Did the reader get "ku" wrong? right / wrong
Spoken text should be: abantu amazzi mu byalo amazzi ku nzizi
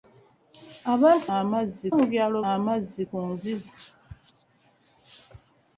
right